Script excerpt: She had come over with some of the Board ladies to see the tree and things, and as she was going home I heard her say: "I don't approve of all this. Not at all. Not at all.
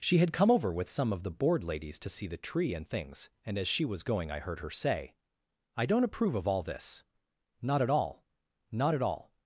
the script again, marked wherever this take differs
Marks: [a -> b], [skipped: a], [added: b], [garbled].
She had come over with some of the Board ladies to see the tree and things, and as she was going [skipped: home] I heard her say: "I don't approve of all this. Not at all. Not at all.